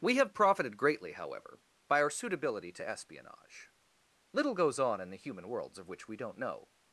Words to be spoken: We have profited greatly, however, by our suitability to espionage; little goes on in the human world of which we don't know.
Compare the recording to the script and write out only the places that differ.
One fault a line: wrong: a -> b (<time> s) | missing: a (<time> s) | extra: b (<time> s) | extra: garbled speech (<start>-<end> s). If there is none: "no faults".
wrong: world -> worlds (5.5 s)